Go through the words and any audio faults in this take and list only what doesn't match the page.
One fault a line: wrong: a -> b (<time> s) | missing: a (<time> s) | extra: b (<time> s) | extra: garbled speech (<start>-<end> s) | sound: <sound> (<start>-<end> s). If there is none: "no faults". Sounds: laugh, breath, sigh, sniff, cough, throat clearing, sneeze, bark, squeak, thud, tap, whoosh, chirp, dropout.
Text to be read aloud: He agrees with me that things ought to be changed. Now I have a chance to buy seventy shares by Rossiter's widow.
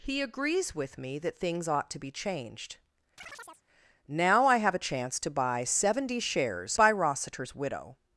sound: chirp (3.2-3.6 s)